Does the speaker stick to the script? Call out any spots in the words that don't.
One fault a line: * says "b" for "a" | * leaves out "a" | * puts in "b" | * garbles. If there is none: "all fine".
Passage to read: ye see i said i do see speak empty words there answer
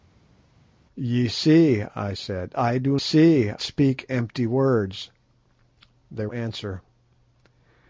all fine